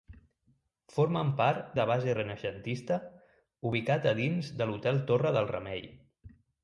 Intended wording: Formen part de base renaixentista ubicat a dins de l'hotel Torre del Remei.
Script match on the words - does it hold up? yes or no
yes